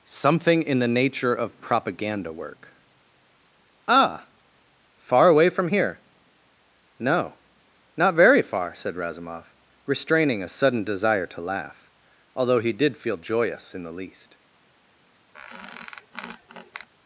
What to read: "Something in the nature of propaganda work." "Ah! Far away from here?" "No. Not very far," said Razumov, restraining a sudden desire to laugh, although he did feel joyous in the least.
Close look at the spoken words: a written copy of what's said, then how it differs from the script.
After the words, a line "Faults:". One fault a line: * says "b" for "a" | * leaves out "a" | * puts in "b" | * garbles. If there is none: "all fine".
"Something in the nature of propaganda work." "Ah! Far away from here?" "No. Not very far," said Razumov, restraining a sudden desire to laugh, although he did feel joyous in the least.
Faults:
all fine